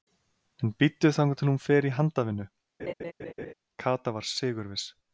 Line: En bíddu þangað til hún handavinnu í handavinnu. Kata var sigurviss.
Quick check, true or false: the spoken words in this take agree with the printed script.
false